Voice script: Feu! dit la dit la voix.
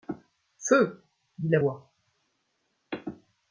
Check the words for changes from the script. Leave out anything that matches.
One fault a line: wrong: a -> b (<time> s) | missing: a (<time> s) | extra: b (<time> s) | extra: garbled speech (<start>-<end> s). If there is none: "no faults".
missing: dit la (1.6 s)